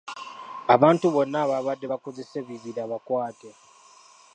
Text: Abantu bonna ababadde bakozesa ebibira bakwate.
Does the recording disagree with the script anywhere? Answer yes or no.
no